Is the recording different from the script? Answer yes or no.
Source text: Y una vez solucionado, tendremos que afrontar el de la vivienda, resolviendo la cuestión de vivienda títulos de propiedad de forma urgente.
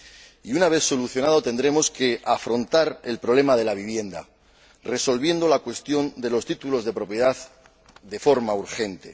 yes